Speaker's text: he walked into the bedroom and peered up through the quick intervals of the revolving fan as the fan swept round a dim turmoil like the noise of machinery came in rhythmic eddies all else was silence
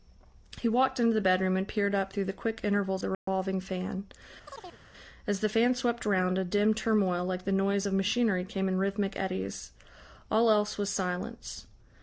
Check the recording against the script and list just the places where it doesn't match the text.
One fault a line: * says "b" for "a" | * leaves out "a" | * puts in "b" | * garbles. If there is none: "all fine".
* leaves out "of"